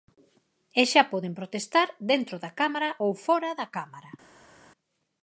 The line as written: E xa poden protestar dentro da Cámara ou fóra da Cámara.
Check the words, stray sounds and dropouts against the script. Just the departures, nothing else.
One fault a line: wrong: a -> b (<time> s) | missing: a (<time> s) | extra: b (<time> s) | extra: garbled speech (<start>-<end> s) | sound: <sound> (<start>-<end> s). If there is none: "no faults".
no faults